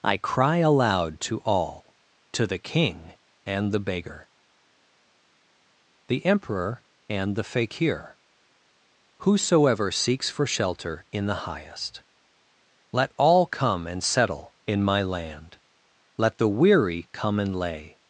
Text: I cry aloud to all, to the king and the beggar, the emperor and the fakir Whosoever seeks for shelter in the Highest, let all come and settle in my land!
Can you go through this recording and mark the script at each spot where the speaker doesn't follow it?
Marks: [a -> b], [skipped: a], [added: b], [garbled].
I cry aloud to all, to the king and the beggar, the emperor and the fakir Whosoever seeks for shelter in the Highest, let all come and settle in my land! [added: Let the weary come and lay]